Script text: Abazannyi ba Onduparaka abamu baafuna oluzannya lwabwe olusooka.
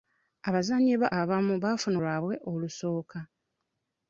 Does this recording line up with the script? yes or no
no